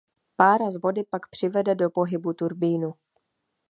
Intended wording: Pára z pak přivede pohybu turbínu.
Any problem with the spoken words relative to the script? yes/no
yes